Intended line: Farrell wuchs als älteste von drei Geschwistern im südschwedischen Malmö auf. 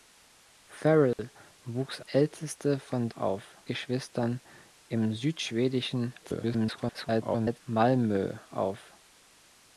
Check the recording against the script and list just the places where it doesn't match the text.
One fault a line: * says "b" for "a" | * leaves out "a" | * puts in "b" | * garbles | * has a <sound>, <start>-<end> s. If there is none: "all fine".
* has a dropout, 1.1-1.2 s
* leaves out "als"
* says "auf" for "drei"
* garbles